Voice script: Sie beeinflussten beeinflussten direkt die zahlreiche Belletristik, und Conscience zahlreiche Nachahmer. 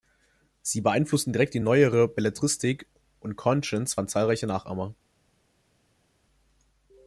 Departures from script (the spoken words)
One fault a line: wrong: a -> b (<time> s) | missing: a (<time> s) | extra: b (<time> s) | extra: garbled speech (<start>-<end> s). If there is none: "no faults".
missing: beeinflussten (1.3 s)
wrong: zahlreiche -> neuere (1.6 s)
extra: fand (3.9 s)